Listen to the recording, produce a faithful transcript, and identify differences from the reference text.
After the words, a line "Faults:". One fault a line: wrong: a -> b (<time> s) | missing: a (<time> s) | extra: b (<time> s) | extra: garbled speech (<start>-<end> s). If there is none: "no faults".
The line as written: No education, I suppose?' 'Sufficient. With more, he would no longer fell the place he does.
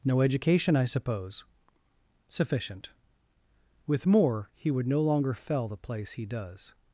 No education, I suppose?' 'Sufficient. With more, he would no longer fell the place he does.
Faults:
no faults